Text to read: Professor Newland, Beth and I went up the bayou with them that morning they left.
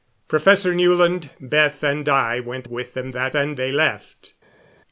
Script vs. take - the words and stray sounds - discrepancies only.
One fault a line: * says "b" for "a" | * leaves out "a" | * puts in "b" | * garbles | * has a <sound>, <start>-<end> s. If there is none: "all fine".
* leaves out "up the bayou"
* says "and" for "morning"